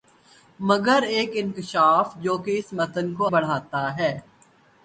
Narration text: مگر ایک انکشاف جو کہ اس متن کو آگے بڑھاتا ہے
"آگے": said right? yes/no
no